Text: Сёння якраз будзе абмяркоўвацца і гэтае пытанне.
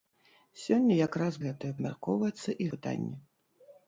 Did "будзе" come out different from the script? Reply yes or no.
yes